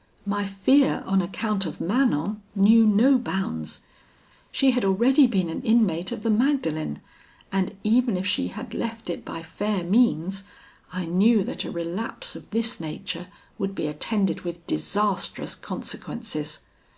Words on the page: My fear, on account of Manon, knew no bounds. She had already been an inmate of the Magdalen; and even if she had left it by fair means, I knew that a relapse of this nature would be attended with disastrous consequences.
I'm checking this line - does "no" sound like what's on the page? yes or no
yes